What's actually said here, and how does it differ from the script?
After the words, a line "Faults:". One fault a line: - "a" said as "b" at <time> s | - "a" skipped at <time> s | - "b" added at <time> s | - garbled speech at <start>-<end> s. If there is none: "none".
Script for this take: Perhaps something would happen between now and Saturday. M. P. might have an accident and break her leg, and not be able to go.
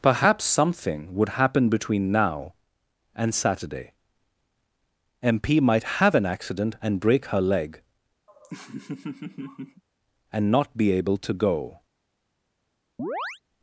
Perhaps something would happen between now and Saturday. M. P. might have an accident and break her leg, and not be able to go.
Faults:
none